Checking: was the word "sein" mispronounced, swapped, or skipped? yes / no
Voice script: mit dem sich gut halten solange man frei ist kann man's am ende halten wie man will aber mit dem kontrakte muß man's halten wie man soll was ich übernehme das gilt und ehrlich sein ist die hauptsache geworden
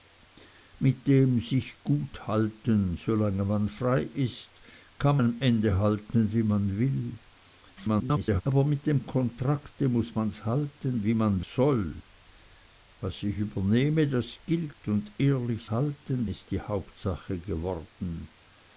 yes